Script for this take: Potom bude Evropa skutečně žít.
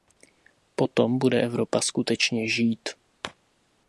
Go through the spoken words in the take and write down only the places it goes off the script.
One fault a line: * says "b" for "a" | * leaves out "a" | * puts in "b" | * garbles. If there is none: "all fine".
all fine